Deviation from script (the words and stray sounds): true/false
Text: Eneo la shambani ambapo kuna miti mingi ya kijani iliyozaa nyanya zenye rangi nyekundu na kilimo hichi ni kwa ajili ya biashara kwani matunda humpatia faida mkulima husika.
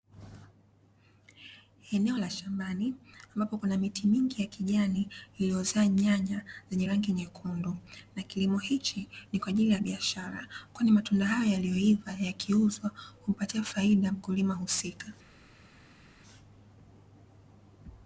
true